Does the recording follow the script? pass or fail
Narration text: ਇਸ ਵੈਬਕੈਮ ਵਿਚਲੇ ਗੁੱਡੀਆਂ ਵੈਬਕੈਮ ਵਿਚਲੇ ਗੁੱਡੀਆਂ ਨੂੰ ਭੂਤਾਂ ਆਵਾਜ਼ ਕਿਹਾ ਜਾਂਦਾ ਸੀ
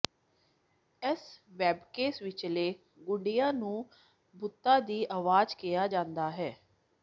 fail